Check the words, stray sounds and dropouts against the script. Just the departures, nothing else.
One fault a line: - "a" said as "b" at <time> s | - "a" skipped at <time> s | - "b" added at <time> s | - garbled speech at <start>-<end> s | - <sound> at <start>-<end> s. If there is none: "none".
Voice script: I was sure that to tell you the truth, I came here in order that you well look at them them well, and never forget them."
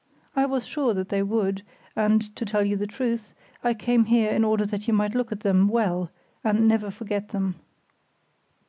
- "they would and" added at 1.1 s
- "well" said as "might" at 5.0 s
- "them" skipped at 5.7 s